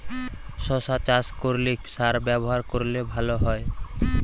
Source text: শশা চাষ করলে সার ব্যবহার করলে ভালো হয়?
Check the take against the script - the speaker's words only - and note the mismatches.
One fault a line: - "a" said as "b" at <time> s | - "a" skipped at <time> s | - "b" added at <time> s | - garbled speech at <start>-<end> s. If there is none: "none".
none